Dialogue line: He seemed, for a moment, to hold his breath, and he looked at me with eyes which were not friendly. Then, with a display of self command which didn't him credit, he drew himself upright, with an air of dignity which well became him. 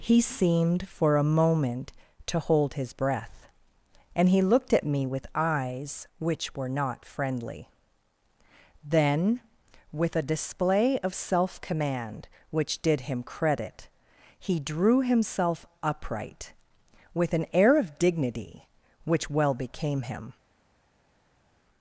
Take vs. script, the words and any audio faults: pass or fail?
fail